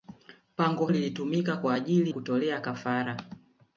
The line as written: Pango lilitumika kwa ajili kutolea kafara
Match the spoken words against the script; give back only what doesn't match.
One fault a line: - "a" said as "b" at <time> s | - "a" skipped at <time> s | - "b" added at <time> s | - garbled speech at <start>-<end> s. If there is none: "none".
none